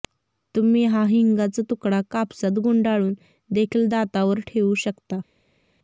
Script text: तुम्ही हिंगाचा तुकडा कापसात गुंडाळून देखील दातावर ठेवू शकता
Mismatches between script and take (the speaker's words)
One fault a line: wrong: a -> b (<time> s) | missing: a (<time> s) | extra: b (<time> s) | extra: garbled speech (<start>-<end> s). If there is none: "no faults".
extra: हा (0.8 s)